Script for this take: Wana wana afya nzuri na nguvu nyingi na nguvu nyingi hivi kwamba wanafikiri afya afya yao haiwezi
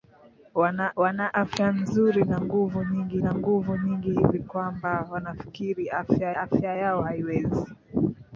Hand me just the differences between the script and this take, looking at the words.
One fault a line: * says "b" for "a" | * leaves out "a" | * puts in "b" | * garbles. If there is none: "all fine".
all fine